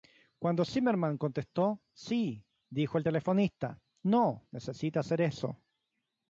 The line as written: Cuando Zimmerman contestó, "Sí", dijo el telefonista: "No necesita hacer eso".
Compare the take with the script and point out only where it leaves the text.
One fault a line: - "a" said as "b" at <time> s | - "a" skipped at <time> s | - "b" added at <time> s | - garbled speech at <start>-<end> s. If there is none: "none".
none